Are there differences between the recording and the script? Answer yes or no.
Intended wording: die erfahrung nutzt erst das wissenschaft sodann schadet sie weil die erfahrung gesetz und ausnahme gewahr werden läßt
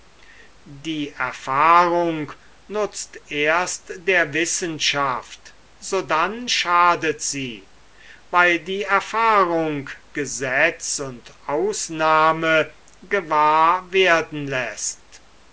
yes